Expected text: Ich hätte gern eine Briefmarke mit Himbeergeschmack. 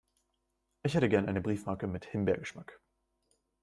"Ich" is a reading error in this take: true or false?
false